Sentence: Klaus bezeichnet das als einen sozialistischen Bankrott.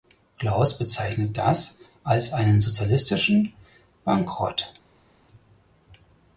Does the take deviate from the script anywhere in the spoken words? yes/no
no